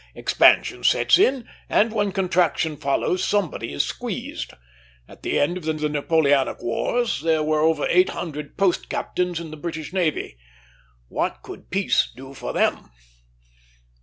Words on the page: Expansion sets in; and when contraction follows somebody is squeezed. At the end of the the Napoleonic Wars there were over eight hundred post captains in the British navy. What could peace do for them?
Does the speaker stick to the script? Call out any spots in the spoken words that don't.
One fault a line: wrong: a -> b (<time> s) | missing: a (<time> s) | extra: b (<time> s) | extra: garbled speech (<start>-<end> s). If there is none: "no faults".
no faults